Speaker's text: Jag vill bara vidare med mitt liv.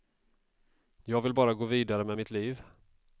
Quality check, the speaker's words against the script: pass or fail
fail